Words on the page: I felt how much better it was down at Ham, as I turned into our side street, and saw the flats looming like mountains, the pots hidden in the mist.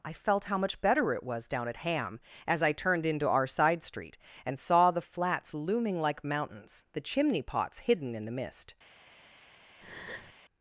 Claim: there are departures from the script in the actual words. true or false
true